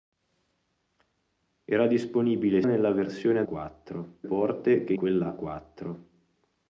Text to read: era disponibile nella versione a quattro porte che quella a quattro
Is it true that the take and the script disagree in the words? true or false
false